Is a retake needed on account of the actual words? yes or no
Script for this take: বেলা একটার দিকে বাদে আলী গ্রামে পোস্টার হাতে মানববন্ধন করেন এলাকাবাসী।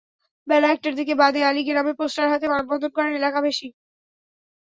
no